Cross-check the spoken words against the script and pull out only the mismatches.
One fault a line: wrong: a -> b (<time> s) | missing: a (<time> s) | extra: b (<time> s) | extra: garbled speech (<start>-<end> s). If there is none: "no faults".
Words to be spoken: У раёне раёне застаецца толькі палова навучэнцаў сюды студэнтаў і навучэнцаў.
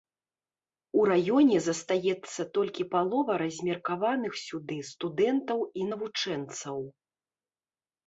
missing: раёне (1.6 s)
wrong: навучэнцаў -> размеркаваных (3.4 s)